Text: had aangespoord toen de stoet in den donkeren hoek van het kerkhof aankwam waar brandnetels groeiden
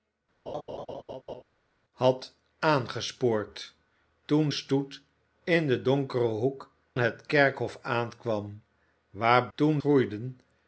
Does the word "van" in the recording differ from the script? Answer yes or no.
yes